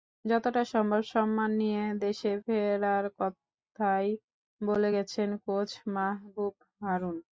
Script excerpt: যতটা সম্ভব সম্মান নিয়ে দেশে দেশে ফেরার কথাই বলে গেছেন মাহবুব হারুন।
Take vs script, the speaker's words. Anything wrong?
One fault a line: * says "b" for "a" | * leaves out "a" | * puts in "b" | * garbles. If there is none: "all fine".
* leaves out "দেশে"
* puts in "কোচ"